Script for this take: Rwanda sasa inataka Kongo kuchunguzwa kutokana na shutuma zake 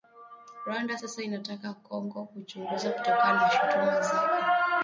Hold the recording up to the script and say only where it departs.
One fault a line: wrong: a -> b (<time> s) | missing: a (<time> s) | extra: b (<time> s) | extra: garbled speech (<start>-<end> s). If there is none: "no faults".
no faults